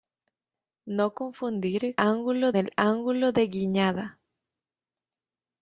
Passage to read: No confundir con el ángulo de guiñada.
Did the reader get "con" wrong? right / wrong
wrong